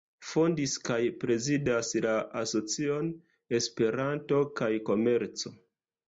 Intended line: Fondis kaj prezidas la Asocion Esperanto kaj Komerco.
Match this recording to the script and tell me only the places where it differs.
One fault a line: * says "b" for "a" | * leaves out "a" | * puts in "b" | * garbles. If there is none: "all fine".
all fine